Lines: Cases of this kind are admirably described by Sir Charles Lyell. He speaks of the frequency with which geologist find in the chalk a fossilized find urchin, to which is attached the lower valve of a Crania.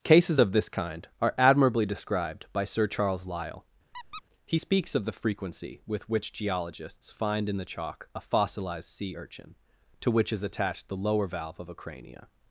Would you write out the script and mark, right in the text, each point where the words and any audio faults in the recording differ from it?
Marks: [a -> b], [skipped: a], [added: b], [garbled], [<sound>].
Cases of this kind are admirably described by Sir Charles Lyell. [squeak] He speaks of the frequency with which [geologist -> geologists] find in the chalk a fossilized [find -> sea] urchin, to which is attached the lower valve of a Crania.